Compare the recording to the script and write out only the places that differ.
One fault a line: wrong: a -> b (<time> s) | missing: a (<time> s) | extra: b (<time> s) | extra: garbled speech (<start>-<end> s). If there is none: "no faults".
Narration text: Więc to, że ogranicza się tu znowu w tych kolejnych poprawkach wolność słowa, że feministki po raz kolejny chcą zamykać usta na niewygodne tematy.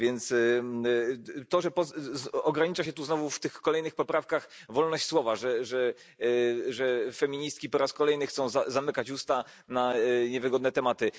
no faults